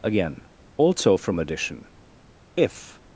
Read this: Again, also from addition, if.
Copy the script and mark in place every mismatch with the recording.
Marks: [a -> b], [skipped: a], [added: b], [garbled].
Again, also from addition, if.